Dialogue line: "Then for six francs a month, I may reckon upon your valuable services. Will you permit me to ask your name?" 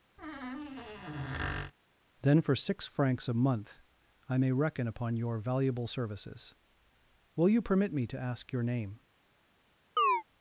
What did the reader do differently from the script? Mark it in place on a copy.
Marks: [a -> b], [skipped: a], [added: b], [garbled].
"Then for six francs a month, I may reckon upon your valuable services. Will you permit me to ask your name?"